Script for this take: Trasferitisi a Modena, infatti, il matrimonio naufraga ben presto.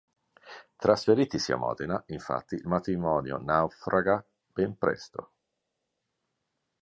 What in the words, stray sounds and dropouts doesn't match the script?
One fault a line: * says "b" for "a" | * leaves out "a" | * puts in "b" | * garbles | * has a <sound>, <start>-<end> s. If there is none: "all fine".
all fine